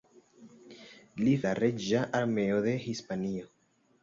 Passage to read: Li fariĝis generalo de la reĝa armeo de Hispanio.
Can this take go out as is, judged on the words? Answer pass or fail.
fail